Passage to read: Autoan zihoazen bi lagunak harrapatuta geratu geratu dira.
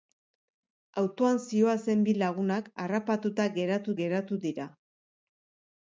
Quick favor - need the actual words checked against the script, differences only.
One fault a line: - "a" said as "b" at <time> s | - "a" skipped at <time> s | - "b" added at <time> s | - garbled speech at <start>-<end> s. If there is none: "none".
none